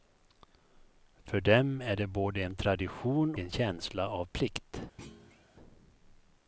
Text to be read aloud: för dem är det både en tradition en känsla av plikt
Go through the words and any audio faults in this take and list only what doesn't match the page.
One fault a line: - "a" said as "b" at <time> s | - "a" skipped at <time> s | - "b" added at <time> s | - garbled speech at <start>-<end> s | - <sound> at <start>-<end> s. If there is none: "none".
- thud at 5.0-5.5 s